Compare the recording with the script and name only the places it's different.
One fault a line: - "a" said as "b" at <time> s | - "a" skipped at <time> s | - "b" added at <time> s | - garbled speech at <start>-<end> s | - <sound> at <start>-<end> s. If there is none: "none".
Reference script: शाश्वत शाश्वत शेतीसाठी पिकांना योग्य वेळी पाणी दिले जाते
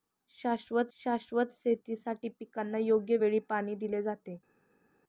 none